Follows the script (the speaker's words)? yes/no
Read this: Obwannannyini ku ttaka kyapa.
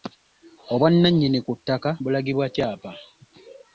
no